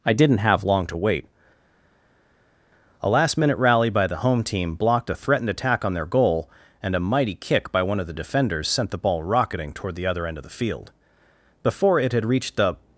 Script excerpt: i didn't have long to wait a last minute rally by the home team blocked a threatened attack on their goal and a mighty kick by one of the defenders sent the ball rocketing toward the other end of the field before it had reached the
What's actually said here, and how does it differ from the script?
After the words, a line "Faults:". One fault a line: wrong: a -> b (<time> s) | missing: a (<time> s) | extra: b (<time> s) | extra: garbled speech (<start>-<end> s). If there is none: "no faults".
i didn't have long to wait a last minute rally by the home team blocked a threatened attack on their goal and a mighty kick by one of the defenders sent the ball rocketing toward the other end of the field before it had reached the
Faults:
no faults